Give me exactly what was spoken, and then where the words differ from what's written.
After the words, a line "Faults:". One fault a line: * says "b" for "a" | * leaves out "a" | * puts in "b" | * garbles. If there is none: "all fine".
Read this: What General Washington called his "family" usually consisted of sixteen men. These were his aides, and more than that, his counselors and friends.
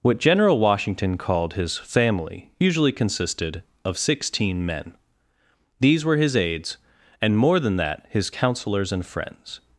What General Washington called his "family" usually consisted of sixteen men. These were his aides, and more than that, his counselors and friends.
Faults:
all fine